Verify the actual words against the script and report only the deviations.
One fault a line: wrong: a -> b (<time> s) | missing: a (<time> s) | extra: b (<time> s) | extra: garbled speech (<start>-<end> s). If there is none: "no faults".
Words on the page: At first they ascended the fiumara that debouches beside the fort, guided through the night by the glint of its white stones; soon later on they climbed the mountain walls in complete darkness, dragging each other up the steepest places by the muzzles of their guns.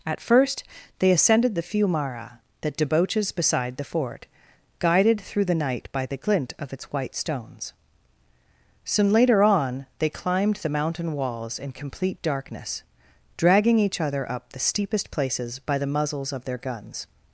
no faults